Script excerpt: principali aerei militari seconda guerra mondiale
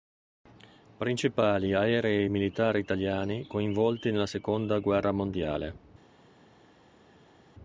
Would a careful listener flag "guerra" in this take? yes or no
no